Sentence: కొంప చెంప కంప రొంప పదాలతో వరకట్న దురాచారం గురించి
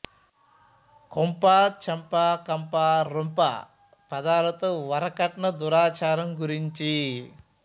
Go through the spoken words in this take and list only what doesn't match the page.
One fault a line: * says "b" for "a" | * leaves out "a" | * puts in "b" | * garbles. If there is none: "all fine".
all fine